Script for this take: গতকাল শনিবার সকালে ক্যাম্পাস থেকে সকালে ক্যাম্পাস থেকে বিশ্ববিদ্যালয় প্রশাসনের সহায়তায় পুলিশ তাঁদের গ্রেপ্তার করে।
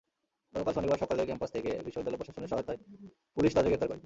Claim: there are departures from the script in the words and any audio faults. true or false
true